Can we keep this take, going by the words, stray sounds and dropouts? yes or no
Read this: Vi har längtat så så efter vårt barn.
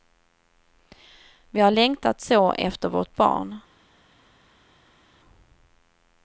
no